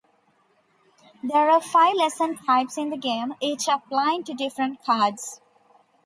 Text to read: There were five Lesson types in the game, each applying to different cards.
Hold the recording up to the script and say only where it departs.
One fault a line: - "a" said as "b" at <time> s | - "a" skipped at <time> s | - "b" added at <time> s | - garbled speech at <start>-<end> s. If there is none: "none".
- "were" said as "are" at 1.5 s